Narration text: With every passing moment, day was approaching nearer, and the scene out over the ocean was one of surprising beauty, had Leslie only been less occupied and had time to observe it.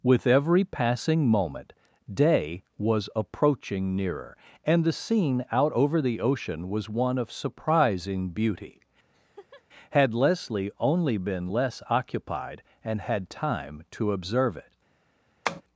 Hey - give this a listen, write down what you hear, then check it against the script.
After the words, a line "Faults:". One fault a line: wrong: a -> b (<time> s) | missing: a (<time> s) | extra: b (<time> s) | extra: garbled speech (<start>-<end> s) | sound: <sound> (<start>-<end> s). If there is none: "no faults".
With every passing moment, day was approaching nearer, and the scene out over the ocean was one of surprising beauty, had Leslie only been less occupied and had time to observe it.
Faults:
sound: laugh (9.1-9.6 s)
sound: tap (15.5-15.6 s)